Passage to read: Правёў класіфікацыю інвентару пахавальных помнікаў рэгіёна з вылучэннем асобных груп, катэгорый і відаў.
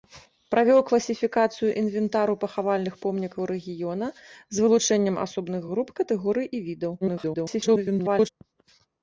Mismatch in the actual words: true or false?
true